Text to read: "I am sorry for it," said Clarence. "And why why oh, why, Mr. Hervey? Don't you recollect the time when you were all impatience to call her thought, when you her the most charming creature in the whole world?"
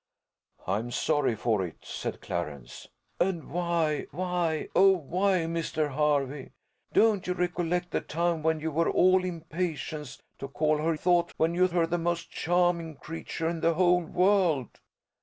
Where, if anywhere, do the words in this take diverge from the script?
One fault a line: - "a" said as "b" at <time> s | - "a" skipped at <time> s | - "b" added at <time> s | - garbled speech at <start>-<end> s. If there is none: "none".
none